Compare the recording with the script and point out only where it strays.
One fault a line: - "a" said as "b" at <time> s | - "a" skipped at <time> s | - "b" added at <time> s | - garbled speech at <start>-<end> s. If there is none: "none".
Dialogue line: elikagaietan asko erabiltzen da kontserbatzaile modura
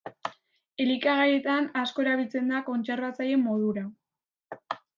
none